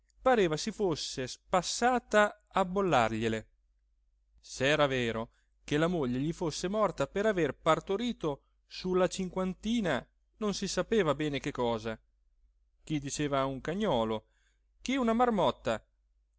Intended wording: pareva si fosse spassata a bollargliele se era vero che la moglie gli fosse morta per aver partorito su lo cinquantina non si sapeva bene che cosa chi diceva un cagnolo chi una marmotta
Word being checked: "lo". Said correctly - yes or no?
no